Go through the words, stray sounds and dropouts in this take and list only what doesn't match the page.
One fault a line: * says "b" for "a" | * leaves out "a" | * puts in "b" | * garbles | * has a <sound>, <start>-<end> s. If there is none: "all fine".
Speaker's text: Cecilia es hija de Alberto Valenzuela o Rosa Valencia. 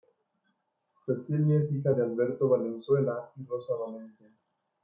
* says "y" for "o"